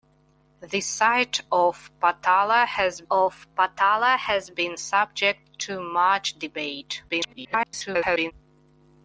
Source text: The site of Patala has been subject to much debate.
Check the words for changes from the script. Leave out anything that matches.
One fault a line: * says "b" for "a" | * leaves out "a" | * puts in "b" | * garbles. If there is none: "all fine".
* puts in "of Patala has"
* garbles